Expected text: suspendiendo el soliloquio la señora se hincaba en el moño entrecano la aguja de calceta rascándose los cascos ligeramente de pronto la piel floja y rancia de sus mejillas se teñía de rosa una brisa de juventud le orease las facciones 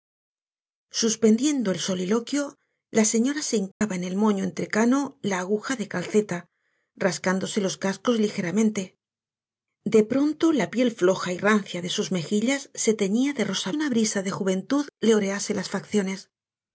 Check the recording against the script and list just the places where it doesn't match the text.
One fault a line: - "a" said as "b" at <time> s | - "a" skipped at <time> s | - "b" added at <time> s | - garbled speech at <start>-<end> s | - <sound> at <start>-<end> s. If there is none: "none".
- dropout at 3.7-3.8 s